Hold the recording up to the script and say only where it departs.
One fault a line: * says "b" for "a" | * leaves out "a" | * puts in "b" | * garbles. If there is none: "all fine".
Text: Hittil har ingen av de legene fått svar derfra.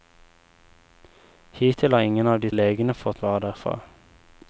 all fine